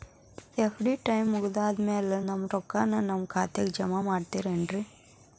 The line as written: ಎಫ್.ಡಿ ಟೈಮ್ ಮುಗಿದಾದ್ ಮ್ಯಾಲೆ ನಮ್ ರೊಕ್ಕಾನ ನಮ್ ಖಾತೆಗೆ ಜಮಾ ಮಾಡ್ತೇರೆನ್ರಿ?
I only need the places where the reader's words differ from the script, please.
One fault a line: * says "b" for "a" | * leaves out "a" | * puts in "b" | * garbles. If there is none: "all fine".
all fine